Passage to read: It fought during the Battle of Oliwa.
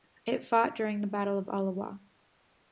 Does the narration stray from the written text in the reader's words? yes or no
no